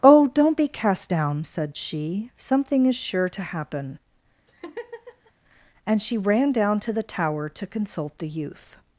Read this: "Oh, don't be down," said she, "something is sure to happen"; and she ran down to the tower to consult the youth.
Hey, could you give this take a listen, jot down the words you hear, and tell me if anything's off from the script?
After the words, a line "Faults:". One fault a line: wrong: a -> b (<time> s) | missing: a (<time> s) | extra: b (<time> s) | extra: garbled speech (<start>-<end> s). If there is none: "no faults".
"Oh, don't be cast down," said she, "something is sure to happen"; and she ran down to the tower to consult the youth.
Faults:
extra: cast (0.7 s)